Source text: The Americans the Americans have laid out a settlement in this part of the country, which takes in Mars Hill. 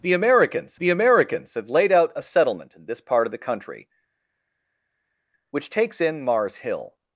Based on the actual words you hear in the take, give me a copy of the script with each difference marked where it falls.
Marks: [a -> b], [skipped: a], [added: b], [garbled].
The Americans the Americans have laid out a settlement in this part of the country, which takes in Mars Hill.